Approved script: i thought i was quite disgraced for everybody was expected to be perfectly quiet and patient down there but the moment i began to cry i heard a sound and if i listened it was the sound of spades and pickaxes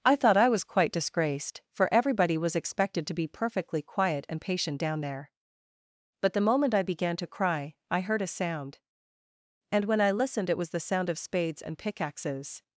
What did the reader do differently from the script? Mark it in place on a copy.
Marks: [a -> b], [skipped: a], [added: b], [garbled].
i thought i was quite disgraced for everybody was expected to be perfectly quiet and patient down there but the moment i began to cry i heard a sound and [if -> when] i listened it was the sound of spades and pickaxes